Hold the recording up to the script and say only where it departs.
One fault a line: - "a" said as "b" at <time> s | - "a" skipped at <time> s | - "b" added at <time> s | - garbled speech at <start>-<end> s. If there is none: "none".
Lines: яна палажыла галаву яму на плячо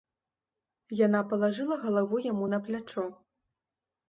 none